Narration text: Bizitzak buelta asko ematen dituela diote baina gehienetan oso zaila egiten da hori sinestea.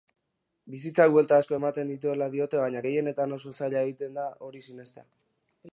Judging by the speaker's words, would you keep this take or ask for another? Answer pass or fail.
pass